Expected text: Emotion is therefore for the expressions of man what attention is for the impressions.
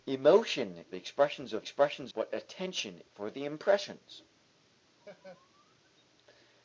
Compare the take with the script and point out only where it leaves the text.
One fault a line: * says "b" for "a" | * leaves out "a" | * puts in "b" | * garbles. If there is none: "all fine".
* leaves out "is therefore for"
* says "expressions" for "man"
* leaves out "is"